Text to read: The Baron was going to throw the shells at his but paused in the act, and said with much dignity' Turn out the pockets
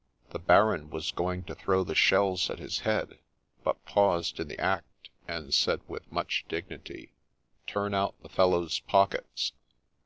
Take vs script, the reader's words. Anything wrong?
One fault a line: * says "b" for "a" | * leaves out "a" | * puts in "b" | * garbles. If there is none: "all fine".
* puts in "head"
* puts in "fellow's"